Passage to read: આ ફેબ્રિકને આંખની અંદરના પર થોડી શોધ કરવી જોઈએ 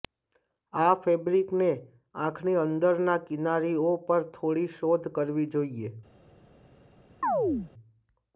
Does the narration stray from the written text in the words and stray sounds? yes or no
yes